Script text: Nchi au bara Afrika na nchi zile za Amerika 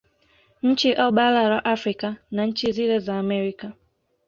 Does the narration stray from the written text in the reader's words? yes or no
yes